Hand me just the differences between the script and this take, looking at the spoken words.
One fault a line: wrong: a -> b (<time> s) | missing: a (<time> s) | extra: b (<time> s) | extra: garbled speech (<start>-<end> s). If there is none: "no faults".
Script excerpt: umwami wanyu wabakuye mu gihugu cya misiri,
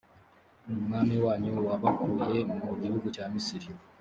no faults